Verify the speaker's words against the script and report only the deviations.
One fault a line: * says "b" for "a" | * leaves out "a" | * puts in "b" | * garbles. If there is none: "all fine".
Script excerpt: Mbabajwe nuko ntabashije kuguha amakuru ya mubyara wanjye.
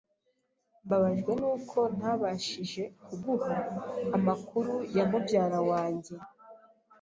all fine